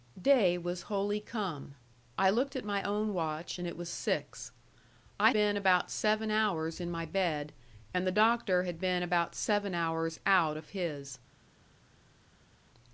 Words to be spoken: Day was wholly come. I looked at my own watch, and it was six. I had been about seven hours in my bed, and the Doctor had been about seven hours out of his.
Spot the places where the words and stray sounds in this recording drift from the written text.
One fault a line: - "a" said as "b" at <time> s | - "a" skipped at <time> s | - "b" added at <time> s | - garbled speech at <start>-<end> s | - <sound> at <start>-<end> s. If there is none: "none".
- "had" skipped at 5.3 s